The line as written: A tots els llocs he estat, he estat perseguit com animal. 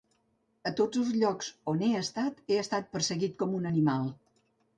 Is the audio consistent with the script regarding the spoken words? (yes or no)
no